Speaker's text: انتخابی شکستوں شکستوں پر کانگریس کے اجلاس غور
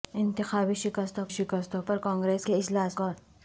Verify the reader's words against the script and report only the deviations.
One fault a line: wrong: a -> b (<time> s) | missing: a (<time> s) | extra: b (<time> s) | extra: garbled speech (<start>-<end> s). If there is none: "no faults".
no faults